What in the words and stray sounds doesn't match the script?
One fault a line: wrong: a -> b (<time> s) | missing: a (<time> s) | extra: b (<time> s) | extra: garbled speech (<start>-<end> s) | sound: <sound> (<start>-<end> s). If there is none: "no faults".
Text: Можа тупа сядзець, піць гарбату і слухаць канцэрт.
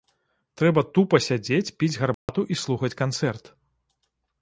wrong: Можа -> Трэба (0.6 s)
sound: dropout (2.1-2.3 s)